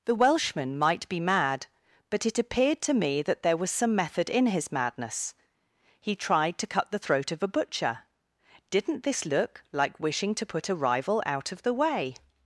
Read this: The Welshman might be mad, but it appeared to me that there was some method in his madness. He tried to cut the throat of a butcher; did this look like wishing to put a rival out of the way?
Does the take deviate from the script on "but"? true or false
false